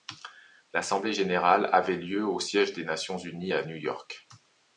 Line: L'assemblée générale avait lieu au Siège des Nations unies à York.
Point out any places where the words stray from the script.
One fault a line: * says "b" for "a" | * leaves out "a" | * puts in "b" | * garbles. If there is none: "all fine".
* puts in "New"